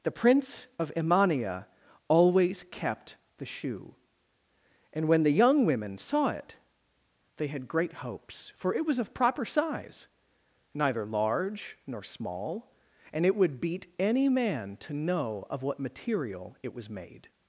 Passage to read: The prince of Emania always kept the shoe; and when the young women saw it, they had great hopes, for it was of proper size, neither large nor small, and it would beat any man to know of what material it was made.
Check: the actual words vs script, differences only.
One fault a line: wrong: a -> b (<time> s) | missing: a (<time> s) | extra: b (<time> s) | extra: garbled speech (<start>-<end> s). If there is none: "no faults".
no faults